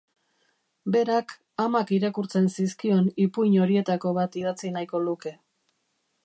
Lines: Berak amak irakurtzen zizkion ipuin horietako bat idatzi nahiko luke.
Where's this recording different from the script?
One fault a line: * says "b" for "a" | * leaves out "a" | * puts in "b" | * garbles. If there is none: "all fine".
all fine